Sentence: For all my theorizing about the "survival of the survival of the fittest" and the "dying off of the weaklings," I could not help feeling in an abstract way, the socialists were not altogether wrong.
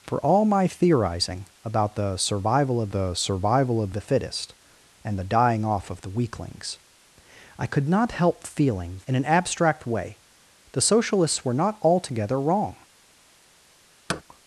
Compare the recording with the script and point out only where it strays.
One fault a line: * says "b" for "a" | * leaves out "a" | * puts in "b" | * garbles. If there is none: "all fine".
all fine